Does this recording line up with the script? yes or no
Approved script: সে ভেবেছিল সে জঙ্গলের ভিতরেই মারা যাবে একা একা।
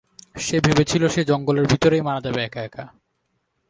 yes